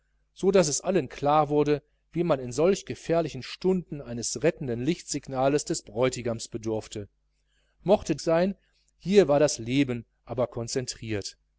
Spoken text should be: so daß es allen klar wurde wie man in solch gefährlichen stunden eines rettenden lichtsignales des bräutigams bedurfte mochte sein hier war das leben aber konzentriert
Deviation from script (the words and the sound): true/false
false